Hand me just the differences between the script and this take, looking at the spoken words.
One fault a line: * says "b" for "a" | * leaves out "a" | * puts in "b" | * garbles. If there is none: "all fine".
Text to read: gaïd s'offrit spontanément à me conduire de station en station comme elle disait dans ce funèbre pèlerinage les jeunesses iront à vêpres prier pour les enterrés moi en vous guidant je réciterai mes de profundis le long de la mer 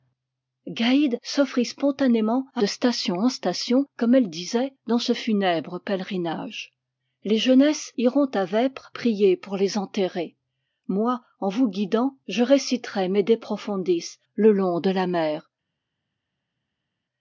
* leaves out "me conduire"